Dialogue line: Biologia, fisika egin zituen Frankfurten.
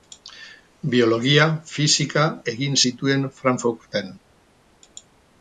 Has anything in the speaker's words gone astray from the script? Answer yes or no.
no